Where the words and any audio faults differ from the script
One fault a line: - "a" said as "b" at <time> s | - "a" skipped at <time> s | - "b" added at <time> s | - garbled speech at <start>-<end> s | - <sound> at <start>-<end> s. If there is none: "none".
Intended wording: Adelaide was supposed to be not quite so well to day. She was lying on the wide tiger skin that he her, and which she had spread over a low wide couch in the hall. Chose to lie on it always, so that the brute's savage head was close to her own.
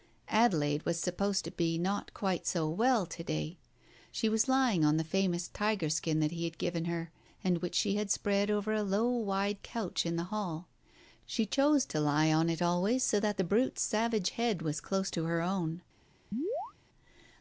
- "wide" said as "famous" at 5.0 s
- "had given" added at 6.5 s
- "She" added at 11.3 s
- chirp at 16.3-16.7 s